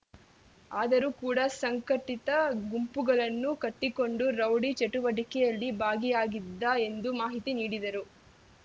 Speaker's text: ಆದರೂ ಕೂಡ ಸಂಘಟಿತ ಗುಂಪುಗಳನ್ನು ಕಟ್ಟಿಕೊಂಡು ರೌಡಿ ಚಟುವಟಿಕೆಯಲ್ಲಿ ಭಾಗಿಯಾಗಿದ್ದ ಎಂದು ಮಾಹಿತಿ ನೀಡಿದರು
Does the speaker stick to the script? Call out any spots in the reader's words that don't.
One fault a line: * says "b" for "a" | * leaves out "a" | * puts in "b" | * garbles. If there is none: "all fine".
all fine